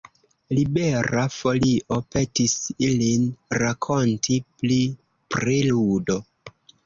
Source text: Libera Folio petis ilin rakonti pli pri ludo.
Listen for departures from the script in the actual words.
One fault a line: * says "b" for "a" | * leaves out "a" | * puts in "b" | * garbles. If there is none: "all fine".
all fine